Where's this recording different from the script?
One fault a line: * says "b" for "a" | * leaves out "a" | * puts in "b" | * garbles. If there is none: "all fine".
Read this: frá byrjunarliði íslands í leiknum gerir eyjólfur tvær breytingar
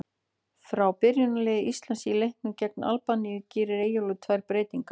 * puts in "gegn albaníu"